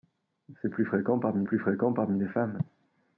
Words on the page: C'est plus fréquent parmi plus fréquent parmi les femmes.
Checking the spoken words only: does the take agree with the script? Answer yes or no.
yes